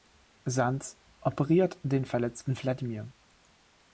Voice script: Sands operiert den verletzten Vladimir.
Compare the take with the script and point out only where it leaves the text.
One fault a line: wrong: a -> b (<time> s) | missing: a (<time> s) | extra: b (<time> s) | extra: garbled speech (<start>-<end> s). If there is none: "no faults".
no faults